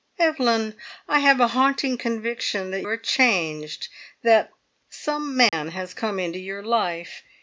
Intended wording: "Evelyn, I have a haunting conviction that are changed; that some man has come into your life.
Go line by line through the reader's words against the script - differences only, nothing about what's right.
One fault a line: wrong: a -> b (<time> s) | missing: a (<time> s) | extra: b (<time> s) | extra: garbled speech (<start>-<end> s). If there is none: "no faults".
no faults